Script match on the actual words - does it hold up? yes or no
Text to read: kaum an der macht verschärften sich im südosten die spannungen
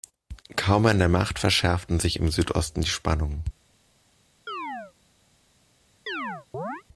yes